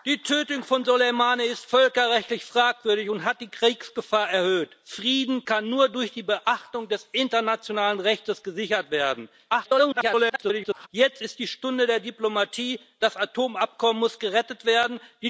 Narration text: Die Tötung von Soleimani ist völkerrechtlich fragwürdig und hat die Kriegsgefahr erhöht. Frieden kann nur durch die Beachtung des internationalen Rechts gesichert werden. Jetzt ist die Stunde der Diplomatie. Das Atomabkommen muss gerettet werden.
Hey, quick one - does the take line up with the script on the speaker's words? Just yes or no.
no